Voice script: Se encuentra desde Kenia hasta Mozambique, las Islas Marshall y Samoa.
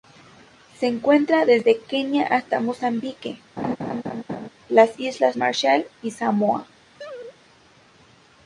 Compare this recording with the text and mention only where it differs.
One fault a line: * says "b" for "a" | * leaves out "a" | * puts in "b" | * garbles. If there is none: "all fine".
all fine